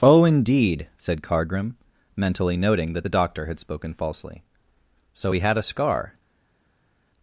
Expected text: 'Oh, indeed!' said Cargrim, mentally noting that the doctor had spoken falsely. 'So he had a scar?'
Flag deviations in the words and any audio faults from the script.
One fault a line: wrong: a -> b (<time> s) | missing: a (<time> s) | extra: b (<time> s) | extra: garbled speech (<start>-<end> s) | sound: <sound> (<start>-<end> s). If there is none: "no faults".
no faults